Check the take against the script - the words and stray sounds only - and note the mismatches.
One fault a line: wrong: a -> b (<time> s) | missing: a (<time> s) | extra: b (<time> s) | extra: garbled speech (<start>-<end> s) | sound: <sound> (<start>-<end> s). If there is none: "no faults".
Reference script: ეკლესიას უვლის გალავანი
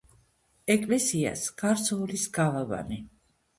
extra: გარს (1.6 s)